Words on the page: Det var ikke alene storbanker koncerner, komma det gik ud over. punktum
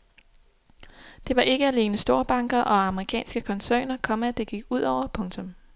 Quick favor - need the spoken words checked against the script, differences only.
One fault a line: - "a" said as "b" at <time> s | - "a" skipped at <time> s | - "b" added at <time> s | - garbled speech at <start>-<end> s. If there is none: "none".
- "og amerikanske" added at 2.6 s